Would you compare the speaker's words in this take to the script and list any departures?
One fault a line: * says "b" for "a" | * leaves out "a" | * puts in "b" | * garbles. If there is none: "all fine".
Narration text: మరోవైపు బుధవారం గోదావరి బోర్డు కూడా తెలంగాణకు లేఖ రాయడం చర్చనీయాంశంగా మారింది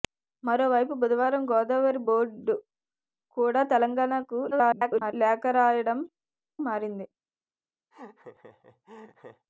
* garbles
* leaves out "చర్చనీయాంశంగా"